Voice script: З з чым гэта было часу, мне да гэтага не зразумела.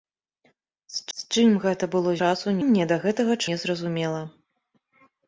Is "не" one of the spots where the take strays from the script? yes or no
no